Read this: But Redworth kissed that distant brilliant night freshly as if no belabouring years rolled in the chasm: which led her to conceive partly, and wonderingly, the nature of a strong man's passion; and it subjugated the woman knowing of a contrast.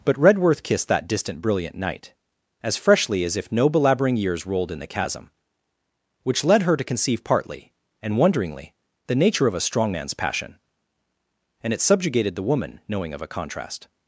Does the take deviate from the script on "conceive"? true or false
false